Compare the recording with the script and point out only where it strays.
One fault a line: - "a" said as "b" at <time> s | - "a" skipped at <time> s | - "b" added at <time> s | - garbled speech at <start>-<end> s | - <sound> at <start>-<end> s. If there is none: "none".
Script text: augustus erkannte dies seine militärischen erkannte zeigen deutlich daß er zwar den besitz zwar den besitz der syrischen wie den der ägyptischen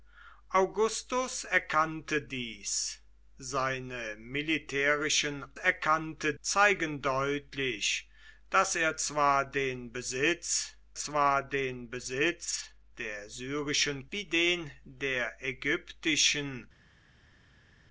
none